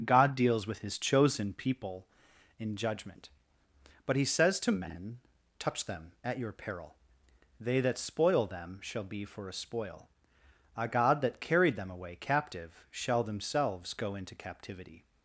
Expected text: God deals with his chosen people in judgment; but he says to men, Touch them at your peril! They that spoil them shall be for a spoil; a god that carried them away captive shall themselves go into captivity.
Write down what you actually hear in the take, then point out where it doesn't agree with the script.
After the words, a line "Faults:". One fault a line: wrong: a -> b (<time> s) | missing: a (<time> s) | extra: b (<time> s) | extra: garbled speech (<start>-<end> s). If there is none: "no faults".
God deals with his chosen people in judgment; but he says to men, Touch them at your peril! They that spoil them shall be for a spoil; a god that carried them away captive shall themselves go into captivity.
Faults:
no faults